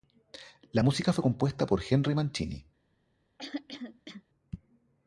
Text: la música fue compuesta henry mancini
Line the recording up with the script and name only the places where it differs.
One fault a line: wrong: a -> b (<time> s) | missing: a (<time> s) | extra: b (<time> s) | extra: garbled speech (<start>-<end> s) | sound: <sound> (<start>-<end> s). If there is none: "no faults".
extra: por (1.7 s)
sound: throat clearing (3.4-4.2 s)